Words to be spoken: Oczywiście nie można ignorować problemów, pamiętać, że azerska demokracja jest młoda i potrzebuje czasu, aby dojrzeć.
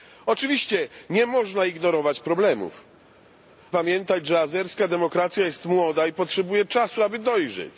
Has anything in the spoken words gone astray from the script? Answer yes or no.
no